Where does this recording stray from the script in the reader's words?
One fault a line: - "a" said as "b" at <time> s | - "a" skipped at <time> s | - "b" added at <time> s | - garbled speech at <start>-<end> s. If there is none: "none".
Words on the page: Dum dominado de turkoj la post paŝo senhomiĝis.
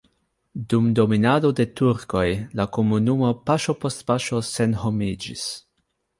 - "komunumo paŝo" added at 2.8 s